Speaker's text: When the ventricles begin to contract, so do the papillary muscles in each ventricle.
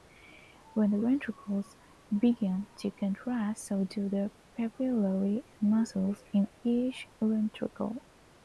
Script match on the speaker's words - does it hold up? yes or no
yes